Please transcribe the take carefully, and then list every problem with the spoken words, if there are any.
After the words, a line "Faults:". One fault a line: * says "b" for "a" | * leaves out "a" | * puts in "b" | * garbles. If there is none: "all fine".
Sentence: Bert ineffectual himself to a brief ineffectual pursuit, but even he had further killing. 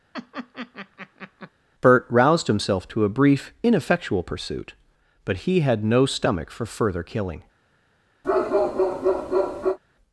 Bert roused himself to a brief ineffectual pursuit, but he had no stomach for further killing.
Faults:
* says "roused" for "ineffectual"
* leaves out "even"
* puts in "no stomach for"